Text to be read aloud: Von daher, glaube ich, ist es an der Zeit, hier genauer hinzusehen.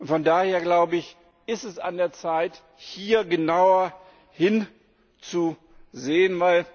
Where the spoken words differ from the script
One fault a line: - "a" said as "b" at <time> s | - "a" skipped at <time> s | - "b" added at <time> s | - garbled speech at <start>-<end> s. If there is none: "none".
none